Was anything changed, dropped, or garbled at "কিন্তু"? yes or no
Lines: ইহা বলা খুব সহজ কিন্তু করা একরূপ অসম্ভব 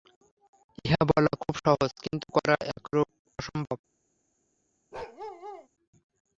no